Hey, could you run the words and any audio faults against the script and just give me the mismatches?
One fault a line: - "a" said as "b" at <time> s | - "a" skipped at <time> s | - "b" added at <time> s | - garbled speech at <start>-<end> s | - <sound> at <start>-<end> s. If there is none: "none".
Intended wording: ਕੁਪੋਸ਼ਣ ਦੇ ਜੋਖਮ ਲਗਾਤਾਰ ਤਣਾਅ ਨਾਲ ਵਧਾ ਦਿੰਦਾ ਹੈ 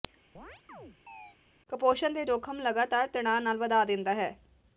- chirp at 0.3-1.4 s